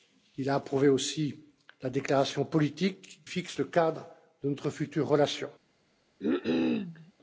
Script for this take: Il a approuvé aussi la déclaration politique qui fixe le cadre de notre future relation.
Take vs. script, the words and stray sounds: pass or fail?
fail